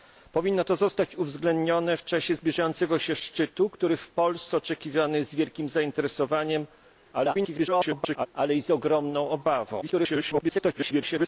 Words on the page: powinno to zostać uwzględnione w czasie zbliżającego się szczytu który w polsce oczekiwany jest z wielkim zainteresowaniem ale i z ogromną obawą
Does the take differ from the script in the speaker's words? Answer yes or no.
yes